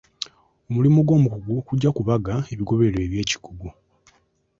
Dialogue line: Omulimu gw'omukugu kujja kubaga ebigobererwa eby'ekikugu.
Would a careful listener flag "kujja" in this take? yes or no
no